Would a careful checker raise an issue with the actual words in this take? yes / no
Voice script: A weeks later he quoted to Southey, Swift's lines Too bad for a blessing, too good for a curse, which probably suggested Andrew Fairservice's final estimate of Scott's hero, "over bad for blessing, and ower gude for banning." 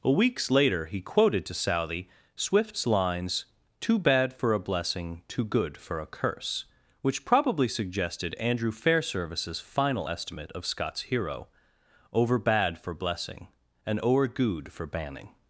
no